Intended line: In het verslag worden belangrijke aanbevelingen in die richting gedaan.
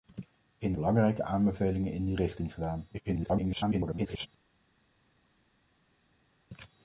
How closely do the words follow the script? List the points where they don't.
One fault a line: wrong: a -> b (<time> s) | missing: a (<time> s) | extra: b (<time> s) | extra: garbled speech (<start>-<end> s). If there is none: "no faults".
missing: het verslag worden (0.7 s)
extra: garbled speech (2.9-4.3 s)